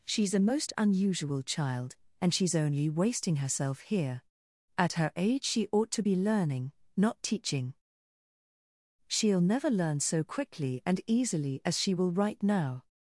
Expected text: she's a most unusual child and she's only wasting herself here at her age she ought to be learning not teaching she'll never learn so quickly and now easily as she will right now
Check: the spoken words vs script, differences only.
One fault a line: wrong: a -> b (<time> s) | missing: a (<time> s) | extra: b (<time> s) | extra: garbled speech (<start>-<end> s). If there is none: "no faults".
missing: now (11.0 s)